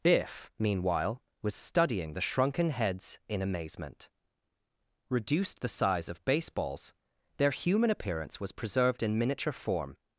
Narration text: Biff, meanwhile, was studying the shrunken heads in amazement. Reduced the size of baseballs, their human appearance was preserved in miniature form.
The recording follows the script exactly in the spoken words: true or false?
true